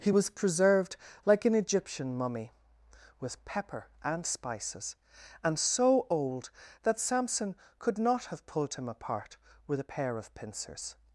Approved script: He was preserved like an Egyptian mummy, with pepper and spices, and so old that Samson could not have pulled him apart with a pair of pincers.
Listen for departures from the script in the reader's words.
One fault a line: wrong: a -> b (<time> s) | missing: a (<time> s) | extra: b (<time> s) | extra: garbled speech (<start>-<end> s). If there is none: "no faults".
no faults